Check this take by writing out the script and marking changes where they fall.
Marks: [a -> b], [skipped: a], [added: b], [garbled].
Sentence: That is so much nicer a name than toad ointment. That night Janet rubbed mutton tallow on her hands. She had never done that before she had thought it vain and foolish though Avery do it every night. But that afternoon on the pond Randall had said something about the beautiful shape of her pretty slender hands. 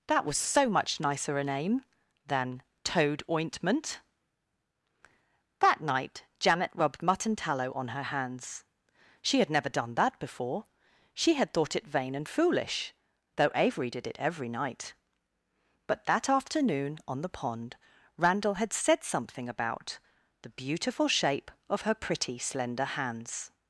That [is -> was] so much nicer a name than toad ointment. That night Janet rubbed mutton tallow on her hands. She had never done that before she had thought it vain and foolish though Avery [do -> did] it every night. But that afternoon on the pond Randall had said something about the beautiful shape of her pretty slender hands.